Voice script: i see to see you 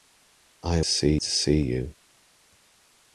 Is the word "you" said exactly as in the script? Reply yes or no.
yes